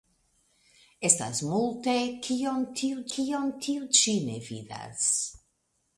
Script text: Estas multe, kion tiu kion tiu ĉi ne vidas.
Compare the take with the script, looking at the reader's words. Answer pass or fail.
pass